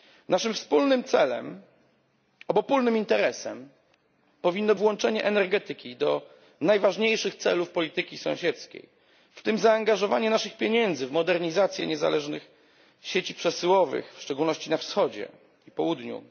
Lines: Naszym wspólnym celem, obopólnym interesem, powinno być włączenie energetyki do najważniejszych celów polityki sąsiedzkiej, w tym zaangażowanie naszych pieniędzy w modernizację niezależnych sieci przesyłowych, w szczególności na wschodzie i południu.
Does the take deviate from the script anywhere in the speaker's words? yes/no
yes